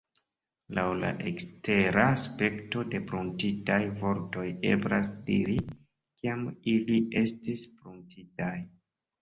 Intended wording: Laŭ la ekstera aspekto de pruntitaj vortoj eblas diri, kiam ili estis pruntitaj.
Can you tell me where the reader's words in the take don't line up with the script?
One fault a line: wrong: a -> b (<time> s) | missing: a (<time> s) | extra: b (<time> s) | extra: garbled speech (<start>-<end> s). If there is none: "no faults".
no faults